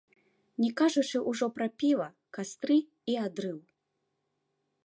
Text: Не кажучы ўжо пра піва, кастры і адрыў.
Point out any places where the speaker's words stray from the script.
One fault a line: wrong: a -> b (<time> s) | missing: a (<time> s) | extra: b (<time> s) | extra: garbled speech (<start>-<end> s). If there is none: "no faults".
no faults